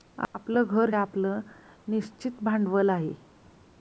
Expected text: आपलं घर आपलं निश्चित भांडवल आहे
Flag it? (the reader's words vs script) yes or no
no